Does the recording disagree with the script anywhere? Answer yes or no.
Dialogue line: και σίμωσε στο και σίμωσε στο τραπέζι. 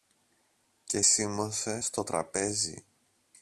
yes